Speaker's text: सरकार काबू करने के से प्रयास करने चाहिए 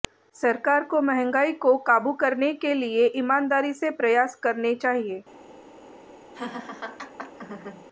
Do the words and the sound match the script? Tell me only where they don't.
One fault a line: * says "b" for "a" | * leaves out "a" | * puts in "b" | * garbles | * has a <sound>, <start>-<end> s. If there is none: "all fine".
* puts in "को महंगाई को"
* puts in "लिए ईमानदारी"
* has a laugh, 6.3-7.9 s